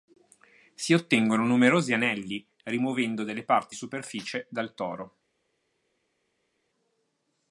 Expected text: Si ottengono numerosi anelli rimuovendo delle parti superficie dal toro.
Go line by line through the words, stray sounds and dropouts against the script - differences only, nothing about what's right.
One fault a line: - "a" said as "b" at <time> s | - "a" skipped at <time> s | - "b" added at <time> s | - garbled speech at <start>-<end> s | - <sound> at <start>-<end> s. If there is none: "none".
none